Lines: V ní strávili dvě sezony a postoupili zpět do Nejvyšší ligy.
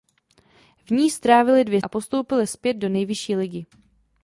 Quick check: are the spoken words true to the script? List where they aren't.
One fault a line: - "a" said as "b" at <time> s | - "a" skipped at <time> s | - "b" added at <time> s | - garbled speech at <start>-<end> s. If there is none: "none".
- "sezony" skipped at 1.8 s